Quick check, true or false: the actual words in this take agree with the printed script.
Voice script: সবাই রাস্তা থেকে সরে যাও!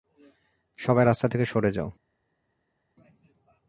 true